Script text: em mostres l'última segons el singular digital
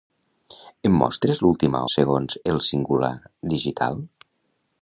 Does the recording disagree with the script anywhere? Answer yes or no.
no